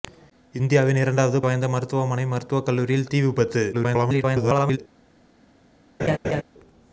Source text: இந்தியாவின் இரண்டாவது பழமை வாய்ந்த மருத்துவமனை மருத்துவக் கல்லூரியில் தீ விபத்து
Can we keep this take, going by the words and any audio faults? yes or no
no